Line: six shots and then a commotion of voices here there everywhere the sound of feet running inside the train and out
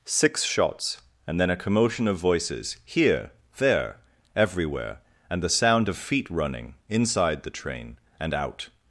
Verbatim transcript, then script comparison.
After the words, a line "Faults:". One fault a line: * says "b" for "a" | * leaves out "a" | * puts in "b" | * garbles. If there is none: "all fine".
six shots and then a commotion of voices here there everywhere and the sound of feet running inside the train and out
Faults:
* puts in "and"